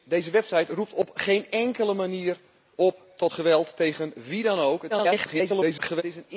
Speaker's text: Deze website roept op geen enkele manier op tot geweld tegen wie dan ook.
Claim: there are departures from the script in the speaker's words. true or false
true